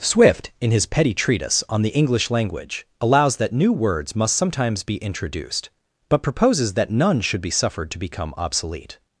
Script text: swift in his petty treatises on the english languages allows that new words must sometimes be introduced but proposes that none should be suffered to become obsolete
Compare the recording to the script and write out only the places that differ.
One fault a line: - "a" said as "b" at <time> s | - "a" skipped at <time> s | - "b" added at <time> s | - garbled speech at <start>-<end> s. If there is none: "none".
- "treatises" said as "treatise" at 1.1 s
- "languages" said as "language" at 2.3 s